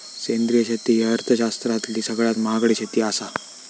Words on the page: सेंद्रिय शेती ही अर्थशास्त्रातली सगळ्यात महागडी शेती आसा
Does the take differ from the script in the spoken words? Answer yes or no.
no